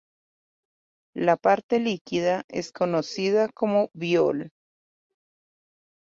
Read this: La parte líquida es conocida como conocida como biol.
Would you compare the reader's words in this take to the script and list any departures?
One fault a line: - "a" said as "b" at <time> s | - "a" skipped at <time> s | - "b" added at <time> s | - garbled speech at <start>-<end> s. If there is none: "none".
- "conocida como" skipped at 3.9 s